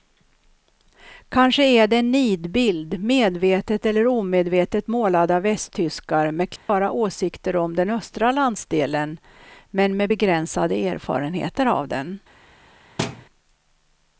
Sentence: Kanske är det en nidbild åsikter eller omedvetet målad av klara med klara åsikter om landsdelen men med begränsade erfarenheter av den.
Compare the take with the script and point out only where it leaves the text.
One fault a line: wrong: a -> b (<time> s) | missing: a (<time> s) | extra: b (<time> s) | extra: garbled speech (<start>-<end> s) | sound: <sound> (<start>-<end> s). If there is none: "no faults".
wrong: åsikter -> medvetet (3.0 s)
wrong: klara -> västtyskar (5.4 s)
sound: dropout (6.6-6.7 s)
extra: den östra (7.8 s)
sound: thud (13.0-13.3 s)